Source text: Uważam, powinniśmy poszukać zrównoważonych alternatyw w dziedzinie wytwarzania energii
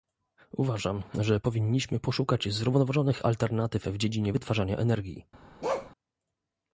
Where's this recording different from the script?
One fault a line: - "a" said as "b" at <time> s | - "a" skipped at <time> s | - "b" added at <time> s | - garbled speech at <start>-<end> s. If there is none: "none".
- "że" added at 1.1 s